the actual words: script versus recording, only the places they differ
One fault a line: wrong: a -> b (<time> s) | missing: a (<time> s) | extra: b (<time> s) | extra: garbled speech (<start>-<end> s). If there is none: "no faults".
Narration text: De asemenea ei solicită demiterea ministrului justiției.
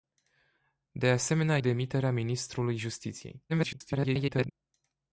missing: ei solicită (1.6 s)
extra: garbled speech (3.5-4.5 s)